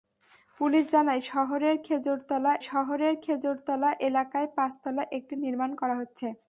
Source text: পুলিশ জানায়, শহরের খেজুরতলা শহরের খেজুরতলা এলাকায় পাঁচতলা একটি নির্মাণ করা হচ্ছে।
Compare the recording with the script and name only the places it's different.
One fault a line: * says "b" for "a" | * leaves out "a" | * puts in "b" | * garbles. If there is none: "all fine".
all fine